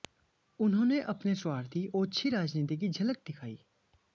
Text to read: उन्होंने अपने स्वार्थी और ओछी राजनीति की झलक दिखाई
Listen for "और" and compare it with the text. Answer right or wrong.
wrong